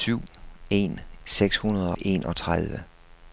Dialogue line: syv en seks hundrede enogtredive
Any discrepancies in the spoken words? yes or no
no